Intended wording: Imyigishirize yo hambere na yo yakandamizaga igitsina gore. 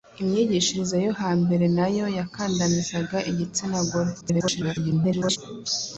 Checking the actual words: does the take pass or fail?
fail